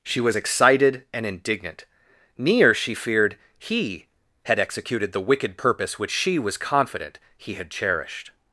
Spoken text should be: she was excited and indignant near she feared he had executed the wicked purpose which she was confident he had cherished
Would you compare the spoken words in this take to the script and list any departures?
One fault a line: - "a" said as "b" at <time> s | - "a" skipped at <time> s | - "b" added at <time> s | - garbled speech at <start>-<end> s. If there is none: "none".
none